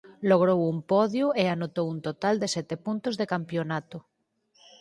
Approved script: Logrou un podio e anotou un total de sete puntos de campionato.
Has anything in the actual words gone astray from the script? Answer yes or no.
no